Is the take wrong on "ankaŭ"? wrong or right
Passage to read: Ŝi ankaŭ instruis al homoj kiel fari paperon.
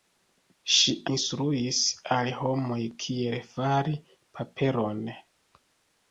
wrong